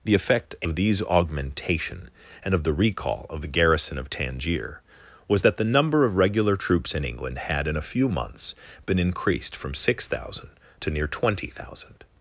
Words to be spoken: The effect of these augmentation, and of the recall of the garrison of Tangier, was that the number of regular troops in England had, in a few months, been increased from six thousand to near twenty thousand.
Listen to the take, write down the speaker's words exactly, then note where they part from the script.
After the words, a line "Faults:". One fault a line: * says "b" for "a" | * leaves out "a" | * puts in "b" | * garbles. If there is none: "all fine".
The effect of these augmentation, and of the recall of the garrison of Tangier, was that the number of regular troops in England had, in a few months, been increased from six thousand to near twenty thousand.
Faults:
all fine